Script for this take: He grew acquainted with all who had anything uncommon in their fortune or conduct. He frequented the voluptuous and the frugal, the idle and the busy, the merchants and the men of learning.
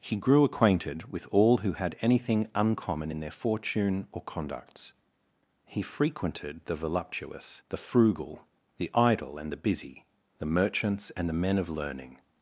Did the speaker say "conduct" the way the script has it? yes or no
no